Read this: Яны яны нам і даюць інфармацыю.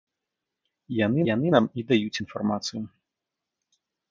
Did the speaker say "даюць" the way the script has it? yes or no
yes